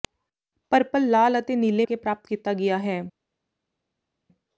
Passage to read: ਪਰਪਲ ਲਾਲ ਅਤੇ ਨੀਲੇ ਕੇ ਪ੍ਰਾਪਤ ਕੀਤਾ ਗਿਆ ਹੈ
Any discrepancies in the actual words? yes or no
no